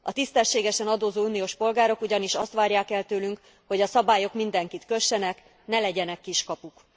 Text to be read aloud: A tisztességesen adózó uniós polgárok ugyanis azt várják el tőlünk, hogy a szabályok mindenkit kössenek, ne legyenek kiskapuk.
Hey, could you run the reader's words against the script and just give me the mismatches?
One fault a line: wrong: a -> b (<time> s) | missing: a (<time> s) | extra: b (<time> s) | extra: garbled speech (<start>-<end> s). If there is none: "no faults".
no faults